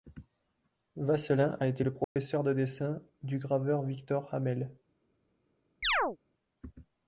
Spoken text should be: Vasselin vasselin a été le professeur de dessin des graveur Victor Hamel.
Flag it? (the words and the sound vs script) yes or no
yes